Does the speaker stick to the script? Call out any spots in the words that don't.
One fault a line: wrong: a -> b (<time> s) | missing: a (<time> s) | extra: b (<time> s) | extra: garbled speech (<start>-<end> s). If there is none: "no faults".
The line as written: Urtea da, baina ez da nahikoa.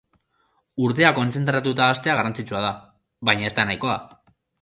extra: kontzentratuta hastea garrantzitsua (1.2 s)